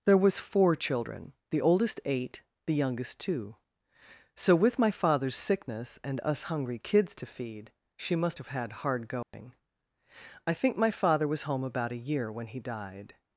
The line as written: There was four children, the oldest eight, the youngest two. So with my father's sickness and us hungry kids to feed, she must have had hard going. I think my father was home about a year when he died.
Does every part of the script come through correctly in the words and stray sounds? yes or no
no